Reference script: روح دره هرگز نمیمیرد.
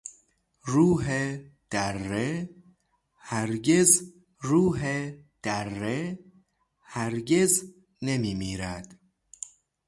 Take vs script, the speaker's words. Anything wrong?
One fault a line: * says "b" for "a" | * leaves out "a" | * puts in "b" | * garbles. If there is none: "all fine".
* puts in "روح دره هرگز"